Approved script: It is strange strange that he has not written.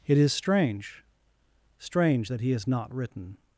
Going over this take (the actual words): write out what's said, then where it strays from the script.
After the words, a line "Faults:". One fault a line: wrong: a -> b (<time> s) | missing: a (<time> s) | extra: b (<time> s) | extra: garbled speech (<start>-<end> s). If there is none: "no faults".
It is strange strange that he has not written.
Faults:
no faults